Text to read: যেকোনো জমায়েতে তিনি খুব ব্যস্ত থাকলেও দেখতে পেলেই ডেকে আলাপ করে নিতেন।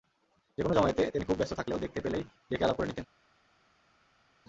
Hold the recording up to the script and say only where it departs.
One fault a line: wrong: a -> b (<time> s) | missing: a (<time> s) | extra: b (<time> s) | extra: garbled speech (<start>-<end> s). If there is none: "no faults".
no faults